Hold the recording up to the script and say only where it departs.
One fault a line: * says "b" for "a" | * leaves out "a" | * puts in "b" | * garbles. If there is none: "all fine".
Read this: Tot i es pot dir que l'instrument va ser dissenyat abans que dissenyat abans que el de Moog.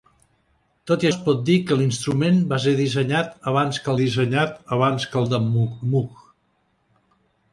all fine